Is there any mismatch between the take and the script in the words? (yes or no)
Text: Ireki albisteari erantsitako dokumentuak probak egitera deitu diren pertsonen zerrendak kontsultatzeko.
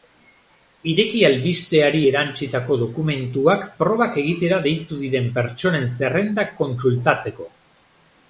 no